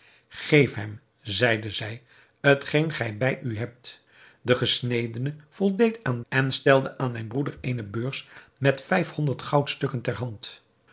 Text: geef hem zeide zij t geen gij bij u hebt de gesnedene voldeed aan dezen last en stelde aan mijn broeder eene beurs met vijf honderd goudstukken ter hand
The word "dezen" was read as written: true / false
false